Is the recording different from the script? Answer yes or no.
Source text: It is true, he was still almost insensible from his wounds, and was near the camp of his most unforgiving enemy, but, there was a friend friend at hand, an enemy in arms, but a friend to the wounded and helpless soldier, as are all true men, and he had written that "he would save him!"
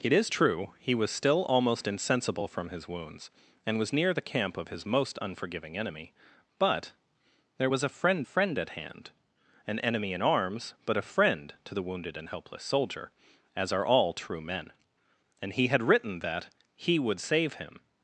no